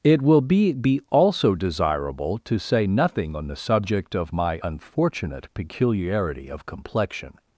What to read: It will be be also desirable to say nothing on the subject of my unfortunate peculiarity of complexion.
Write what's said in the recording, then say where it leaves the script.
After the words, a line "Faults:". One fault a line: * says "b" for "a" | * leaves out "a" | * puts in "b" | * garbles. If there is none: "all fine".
It will be be also desirable to say nothing on the subject of my unfortunate peculiarity of complexion.
Faults:
all fine